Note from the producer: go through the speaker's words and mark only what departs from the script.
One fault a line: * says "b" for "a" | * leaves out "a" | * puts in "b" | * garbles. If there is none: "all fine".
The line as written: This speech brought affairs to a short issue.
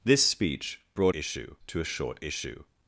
* says "issue" for "affairs"